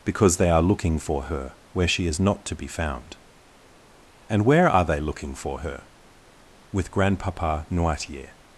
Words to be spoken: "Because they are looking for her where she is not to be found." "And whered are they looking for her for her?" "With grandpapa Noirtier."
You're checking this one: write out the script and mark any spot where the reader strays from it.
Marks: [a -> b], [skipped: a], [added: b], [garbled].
"Because they are looking for her where she is not to be found." "And [whered -> where] are they looking for her [skipped: for her?"] "With grandpapa Noirtier."